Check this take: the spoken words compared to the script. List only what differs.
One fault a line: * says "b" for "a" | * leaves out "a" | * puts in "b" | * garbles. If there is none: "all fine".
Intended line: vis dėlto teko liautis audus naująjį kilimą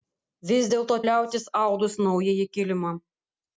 * leaves out "teko"